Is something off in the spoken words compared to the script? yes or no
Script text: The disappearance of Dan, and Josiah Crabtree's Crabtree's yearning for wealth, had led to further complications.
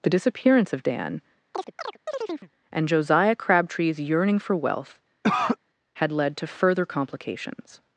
yes